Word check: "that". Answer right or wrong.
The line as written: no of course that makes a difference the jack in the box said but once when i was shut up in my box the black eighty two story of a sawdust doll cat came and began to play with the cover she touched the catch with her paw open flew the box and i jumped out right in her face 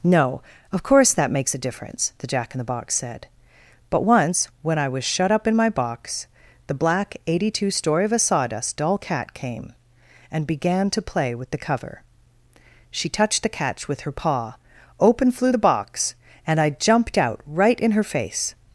right